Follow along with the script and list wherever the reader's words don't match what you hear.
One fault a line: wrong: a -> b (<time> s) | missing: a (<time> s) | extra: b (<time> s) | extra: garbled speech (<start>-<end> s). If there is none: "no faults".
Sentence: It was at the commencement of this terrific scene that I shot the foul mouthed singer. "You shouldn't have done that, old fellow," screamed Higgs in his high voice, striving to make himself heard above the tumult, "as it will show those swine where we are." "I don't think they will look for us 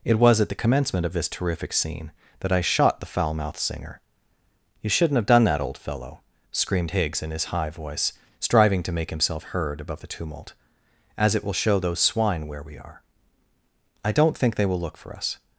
no faults